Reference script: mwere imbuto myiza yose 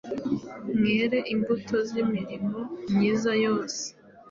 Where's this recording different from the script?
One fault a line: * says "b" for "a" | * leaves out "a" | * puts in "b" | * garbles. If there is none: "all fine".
* puts in "z'imirimo"